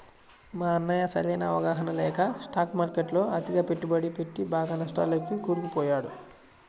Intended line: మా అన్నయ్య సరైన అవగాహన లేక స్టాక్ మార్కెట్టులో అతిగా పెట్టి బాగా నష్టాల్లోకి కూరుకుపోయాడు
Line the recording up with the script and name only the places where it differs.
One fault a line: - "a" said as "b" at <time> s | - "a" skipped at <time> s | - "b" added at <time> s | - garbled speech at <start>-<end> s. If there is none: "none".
- "పెట్టుబడి" added at 3.7 s